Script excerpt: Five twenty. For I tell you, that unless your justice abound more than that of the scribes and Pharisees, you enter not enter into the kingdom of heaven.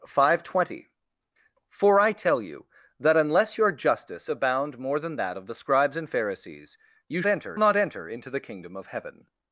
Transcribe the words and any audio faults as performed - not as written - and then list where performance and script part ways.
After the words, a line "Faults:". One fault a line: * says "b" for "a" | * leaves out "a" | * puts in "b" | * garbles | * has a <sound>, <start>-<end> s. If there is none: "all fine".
Five twenty. For I tell you, that unless your justice abound more than that of the scribes and Pharisees, you enter not enter into the kingdom of heaven.
Faults:
all fine